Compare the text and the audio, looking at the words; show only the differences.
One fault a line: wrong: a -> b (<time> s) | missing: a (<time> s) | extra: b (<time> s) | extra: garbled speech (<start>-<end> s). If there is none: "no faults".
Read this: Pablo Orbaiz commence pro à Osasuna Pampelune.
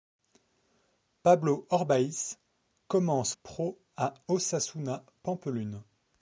no faults